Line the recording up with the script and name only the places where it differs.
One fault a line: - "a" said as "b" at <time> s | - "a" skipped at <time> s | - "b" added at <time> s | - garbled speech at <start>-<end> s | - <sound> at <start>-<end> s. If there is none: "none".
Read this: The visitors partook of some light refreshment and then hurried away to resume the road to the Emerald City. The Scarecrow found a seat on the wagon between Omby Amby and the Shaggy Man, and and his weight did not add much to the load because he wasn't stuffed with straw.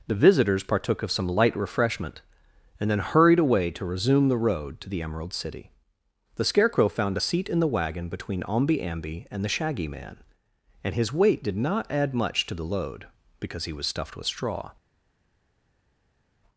- "on" said as "in" at 7.5 s
- "and" skipped at 10.9 s
- "wasn't" said as "was" at 13.7 s